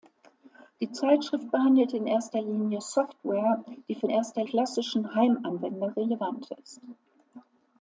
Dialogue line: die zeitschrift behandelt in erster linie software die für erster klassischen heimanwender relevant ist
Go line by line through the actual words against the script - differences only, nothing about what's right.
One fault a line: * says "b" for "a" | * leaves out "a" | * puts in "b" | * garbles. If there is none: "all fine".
all fine